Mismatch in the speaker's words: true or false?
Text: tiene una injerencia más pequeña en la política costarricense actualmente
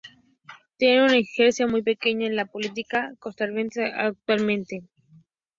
true